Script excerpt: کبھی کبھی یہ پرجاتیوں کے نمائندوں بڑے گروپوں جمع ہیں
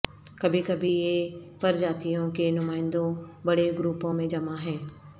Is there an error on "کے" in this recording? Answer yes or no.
no